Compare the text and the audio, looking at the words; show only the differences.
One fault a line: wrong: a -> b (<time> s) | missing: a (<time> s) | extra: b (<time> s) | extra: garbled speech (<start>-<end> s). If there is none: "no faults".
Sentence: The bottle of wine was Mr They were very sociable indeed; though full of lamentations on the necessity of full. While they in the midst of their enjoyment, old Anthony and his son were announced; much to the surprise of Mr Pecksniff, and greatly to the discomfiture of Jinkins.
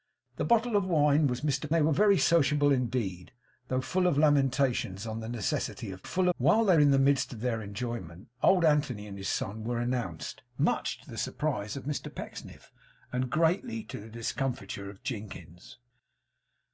no faults